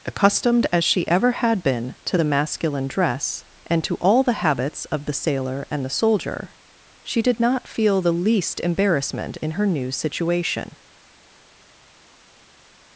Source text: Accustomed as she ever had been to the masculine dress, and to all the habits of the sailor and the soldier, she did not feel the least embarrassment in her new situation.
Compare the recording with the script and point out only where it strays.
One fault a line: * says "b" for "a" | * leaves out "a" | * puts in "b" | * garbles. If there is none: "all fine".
all fine